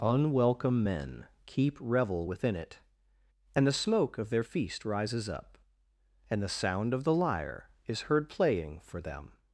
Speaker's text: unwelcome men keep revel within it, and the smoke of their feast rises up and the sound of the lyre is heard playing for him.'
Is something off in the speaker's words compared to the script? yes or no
yes